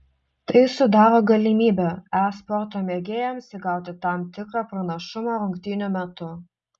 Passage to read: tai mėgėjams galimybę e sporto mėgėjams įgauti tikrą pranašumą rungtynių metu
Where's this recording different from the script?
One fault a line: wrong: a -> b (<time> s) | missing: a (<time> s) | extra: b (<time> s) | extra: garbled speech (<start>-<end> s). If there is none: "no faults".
wrong: mėgėjams -> sudaro (0.8 s)
extra: tam (4.1 s)